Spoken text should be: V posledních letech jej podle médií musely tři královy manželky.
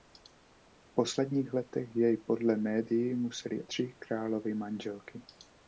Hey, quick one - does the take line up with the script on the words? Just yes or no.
yes